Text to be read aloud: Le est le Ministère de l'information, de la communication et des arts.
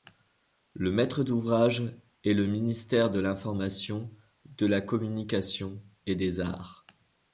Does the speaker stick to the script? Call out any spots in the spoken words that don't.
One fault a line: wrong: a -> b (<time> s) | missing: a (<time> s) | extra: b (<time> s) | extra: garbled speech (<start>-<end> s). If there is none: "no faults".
extra: maître d'ouvrage (0.9 s)